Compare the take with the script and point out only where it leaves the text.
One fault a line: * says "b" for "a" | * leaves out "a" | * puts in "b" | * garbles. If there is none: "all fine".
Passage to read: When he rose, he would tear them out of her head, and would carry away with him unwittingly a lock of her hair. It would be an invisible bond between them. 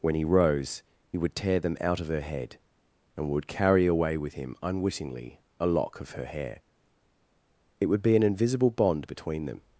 * leaves out "he"